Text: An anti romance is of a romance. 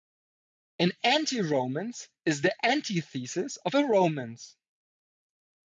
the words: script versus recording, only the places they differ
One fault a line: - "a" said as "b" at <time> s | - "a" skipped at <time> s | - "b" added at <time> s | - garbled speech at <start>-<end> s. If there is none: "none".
- "the antithesis" added at 2.4 s